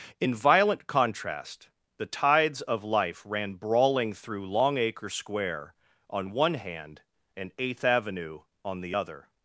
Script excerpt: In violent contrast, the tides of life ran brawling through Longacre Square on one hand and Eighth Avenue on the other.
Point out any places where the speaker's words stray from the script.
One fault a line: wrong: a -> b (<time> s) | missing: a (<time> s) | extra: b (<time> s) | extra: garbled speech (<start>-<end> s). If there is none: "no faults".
no faults